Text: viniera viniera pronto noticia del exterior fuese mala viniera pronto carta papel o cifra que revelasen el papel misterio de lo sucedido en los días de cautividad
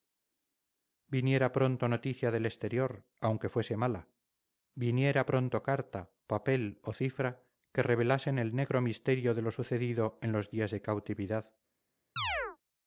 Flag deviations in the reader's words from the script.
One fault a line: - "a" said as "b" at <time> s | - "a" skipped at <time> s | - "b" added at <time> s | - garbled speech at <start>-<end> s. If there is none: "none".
- "viniera" skipped at 1.5 s
- "aunque" added at 3.3 s
- "papel" said as "negro" at 8.5 s